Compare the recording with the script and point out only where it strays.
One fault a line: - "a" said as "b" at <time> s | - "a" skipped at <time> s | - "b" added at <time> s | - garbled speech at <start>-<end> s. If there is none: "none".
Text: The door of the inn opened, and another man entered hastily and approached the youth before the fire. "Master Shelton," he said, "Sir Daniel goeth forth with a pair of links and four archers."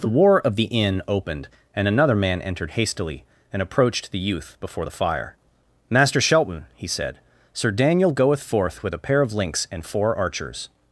- "door" said as "war" at 0.2 s